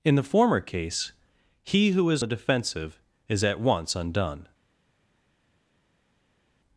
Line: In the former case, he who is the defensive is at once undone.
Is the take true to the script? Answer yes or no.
yes